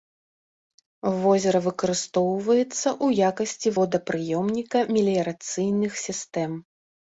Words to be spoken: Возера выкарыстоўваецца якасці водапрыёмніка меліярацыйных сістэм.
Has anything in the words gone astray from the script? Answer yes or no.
yes